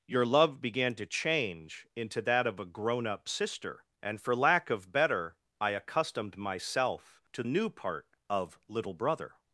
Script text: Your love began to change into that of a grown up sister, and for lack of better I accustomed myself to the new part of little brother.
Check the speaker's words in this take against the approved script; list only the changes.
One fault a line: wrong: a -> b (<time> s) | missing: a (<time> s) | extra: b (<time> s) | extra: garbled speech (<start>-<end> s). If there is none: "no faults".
missing: the (7.4 s)